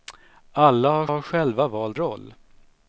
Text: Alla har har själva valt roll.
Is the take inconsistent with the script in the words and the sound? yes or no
no